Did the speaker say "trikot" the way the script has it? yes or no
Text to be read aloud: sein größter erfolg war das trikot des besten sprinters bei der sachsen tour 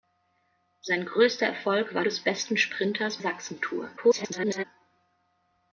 no